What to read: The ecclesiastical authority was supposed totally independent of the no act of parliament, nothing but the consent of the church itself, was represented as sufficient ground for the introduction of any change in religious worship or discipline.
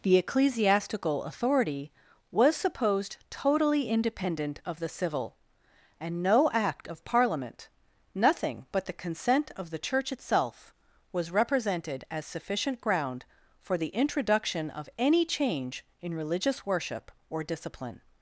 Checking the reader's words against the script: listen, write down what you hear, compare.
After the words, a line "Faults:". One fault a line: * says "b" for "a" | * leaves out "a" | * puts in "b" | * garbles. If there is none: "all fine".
The ecclesiastical authority was supposed totally independent of the civil; and no act of parliament, nothing but the consent of the church itself, was represented as sufficient ground for the introduction of any change in religious worship or discipline.
Faults:
* puts in "civil and"